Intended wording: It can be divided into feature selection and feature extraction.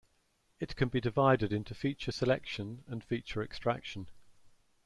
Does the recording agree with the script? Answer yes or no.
yes